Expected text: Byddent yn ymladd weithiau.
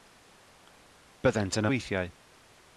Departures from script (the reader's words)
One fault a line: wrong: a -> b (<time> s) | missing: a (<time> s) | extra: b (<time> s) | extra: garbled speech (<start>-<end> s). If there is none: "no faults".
missing: ymladd (1.7 s)